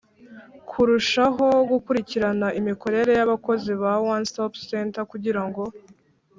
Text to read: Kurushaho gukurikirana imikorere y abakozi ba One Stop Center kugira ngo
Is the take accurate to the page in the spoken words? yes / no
yes